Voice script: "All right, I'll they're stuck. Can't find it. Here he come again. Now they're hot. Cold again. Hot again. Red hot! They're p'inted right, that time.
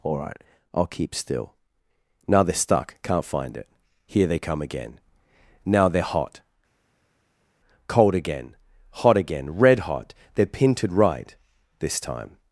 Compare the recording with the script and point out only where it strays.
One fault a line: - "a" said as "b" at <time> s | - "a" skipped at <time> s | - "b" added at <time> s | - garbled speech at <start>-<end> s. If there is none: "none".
- "keep still Now" added at 0.9 s
- "he" said as "they" at 4.3 s
- "that" said as "this" at 11.8 s